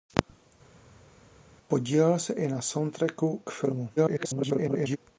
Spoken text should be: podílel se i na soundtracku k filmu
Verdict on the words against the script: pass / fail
fail